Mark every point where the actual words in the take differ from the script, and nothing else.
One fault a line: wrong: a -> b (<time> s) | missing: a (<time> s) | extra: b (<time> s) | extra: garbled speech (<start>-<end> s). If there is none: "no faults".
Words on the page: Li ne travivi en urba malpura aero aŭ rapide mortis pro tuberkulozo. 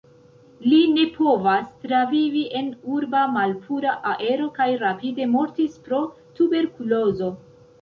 extra: povas (1.2 s)
wrong: aŭ -> kaj (4.6 s)